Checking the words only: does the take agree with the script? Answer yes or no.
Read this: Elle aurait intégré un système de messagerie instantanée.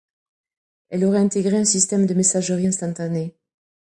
yes